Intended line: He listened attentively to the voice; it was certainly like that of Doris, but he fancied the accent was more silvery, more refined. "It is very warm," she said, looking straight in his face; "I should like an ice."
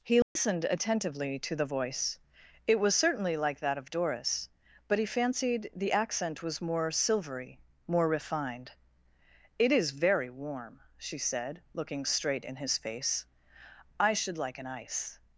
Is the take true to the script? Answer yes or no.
yes